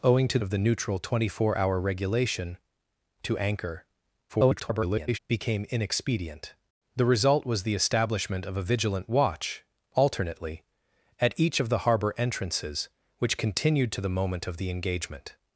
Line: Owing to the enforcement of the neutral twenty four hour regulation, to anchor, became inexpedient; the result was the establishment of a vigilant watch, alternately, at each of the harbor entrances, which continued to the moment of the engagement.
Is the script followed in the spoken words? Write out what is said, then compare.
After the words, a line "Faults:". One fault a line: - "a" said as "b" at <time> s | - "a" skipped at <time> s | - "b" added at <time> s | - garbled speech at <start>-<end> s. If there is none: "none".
Owing to of the neutral twenty four hour regulation, to anchor, [garbled] became inexpedient; the result was the establishment of a vigilant watch, alternately, at each of the harbor entrances, which continued to the moment of the engagement.
Faults:
- "the enforcement" skipped at 0.4 s
- garbled speech at 4.3-5.2 s